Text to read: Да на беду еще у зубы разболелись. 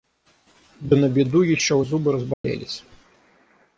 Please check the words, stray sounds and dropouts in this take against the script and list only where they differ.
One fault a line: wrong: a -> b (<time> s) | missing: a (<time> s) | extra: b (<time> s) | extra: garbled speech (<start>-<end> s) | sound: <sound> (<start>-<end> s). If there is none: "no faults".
sound: dropout (2.3-2.4 s)